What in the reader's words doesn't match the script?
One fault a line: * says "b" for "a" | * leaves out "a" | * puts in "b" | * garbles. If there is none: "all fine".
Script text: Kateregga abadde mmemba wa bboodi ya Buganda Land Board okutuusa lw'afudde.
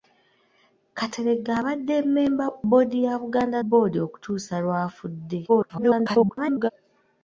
* leaves out "wa"
* leaves out "Land"
* garbles